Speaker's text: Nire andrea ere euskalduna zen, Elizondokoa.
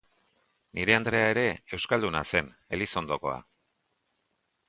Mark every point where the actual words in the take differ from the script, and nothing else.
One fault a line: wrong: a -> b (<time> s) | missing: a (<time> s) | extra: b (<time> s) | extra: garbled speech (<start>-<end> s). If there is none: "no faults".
no faults